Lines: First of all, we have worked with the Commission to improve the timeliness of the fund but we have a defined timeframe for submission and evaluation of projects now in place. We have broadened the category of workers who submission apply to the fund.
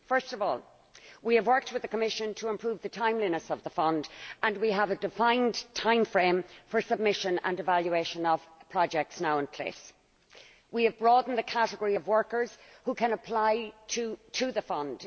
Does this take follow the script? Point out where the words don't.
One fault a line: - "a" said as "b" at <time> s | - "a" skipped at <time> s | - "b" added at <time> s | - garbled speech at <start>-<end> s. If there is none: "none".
- "but" said as "and" at 4.4 s
- "submission" said as "can" at 12.9 s